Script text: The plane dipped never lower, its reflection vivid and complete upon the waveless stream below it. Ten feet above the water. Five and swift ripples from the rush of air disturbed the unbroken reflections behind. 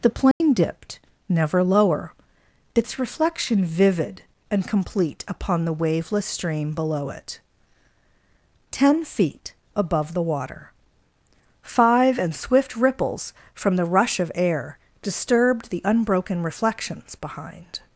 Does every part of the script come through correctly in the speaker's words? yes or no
yes